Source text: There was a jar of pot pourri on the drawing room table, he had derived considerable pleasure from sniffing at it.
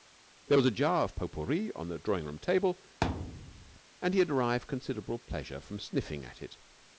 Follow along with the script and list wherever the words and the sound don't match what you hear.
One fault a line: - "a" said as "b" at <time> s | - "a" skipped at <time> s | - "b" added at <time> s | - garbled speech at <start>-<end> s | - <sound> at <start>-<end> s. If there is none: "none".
- thud at 3.0-3.8 s
- "and" added at 4.0 s